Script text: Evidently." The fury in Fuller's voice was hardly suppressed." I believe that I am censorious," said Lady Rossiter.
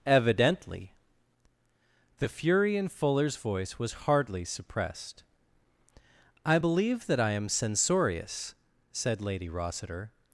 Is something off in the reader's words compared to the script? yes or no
no